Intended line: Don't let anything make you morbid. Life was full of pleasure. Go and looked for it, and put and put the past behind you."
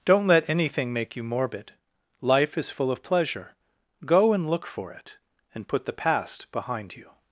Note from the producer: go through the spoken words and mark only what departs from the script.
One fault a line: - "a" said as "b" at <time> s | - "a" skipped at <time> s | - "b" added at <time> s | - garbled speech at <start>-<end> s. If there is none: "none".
- "was" said as "is" at 2.6 s
- "looked" said as "look" at 4.5 s
- "and put" skipped at 5.9 s